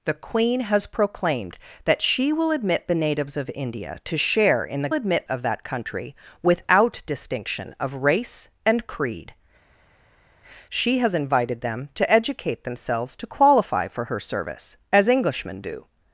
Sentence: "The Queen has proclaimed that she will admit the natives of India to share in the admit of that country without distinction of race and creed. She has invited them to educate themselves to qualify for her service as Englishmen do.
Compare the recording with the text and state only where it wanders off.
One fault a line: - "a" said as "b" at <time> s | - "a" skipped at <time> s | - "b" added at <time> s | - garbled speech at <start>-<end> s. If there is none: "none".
none